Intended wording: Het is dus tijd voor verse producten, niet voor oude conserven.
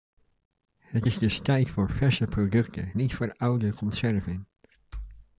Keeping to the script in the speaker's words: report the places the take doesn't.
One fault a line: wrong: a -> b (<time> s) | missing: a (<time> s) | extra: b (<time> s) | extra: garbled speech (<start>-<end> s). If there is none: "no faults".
no faults